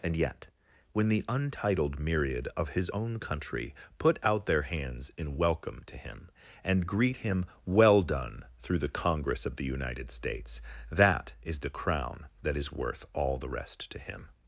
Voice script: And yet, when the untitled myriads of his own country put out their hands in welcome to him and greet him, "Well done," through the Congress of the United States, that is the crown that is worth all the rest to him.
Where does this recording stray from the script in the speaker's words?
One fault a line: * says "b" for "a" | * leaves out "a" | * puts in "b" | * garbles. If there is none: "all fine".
* says "myriad" for "myriads"